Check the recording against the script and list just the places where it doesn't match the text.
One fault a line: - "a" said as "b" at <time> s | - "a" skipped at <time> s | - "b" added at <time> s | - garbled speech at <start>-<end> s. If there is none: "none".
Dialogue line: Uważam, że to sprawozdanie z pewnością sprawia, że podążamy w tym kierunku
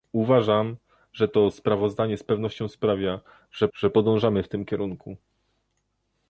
- "że" added at 3.7 s